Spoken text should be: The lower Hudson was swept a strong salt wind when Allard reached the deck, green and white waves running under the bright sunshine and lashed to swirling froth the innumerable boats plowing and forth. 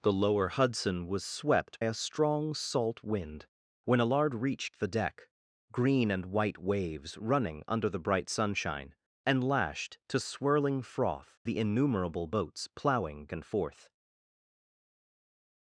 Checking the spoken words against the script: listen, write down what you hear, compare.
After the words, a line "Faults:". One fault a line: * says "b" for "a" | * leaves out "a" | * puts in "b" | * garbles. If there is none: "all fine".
The lower Hudson was swept a strong salt wind when Allard reached the deck, green and white waves running under the bright sunshine and lashed to swirling froth the innumerable boats plowing and forth.
Faults:
all fine